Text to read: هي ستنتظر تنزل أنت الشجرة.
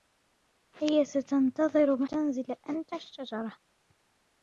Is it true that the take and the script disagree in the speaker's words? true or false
false